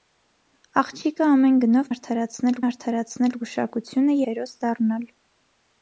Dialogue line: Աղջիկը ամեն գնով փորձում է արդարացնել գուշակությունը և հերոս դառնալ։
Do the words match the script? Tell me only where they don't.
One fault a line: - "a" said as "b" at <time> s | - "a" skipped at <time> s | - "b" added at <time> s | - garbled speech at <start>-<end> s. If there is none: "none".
- "փորձում" said as "արդարացնել" at 1.9 s
- "և" skipped at 4.2 s